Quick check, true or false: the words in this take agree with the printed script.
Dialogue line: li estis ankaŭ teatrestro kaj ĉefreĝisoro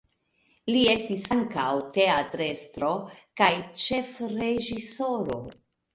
true